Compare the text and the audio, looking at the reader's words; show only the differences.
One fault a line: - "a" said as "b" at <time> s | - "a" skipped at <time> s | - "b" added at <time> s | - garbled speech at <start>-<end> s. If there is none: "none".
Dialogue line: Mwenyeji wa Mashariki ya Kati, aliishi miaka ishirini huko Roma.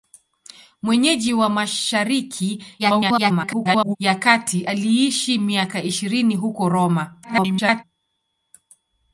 - garbled speech at 2.8-4.0 s
- garbled speech at 7.2-7.8 s